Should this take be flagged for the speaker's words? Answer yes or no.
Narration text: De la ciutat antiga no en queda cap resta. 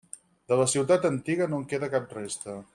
no